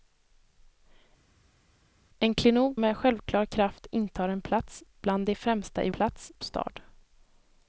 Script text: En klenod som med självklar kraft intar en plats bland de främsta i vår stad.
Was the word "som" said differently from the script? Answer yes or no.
yes